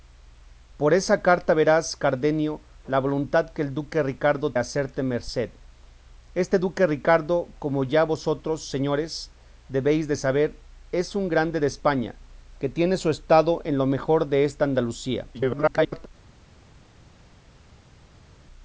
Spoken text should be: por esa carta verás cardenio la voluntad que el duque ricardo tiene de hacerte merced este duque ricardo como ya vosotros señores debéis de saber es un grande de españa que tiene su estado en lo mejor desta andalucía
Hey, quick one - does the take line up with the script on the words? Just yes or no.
no